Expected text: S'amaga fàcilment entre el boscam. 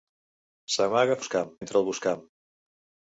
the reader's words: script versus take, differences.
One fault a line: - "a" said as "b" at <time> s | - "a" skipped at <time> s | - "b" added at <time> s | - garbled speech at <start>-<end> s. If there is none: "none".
- "fàcilment" said as "boscam" at 1.2 s